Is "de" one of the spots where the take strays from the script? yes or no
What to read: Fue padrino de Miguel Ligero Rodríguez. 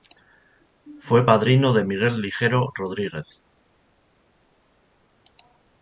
no